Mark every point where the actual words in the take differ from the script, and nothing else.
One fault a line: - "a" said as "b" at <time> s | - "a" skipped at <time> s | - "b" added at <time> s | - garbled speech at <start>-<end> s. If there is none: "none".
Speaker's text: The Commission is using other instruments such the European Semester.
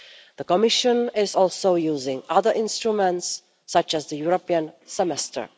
- "also" added at 1.3 s
- "as" added at 3.9 s